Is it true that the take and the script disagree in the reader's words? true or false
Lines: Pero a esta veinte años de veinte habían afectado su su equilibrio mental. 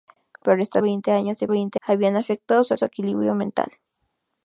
false